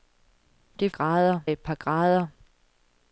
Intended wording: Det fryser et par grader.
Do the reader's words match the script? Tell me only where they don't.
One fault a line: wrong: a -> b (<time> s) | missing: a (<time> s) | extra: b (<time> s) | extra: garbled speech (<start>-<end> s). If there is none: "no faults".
wrong: fryser -> grader (0.9 s)